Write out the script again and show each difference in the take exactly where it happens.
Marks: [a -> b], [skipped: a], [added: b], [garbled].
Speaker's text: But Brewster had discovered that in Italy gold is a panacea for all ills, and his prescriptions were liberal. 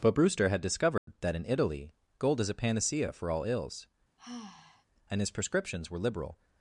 But Brewster had discovered that in Italy gold is a panacea for all ills, and his prescriptions were liberal.